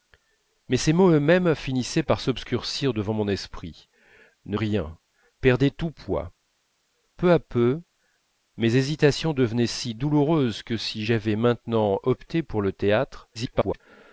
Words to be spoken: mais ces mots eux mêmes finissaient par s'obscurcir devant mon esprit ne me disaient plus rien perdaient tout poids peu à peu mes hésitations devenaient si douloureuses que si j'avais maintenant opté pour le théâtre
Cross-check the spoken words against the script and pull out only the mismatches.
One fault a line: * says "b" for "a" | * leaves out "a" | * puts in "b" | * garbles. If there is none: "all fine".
* leaves out "me disaient plus"
* garbles